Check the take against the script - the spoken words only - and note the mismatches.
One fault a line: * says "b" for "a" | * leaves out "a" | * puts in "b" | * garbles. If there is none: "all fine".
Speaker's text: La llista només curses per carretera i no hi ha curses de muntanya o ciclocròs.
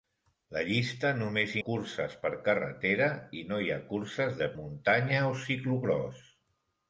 all fine